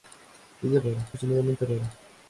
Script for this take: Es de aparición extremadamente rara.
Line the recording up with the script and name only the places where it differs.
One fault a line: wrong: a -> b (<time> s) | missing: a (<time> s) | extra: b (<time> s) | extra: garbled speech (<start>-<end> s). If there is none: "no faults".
wrong: aparición -> rara (0.8 s)